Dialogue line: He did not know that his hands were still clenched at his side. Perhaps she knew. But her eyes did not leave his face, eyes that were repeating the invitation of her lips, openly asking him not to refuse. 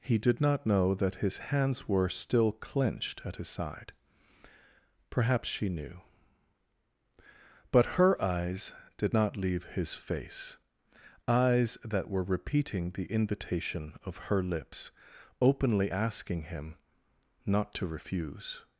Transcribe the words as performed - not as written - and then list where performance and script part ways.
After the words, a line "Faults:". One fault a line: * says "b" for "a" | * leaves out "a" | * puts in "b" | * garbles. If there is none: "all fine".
He did not know that his hands were still clenched at his side. Perhaps she knew. But her eyes did not leave his face, eyes that were repeating the invitation of her lips, openly asking him not to refuse.
Faults:
all fine